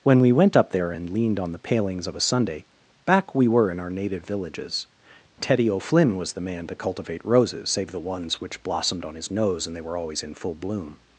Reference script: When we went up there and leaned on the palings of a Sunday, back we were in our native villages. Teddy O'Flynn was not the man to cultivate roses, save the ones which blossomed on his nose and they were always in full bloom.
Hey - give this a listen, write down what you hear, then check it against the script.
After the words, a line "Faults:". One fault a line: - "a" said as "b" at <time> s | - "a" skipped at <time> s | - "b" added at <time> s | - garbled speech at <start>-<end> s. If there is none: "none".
When we went up there and leaned on the palings of a Sunday, back we were in our native villages. Teddy O'Flynn was the man to cultivate roses, save the ones which blossomed on his nose and they were always in full bloom.
Faults:
- "not" skipped at 6.3 s